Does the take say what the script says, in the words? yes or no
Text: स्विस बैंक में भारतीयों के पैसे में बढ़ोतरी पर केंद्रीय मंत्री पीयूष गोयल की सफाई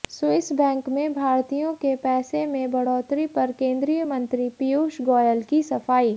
yes